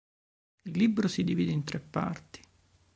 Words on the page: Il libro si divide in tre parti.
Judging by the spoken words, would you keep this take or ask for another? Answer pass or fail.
pass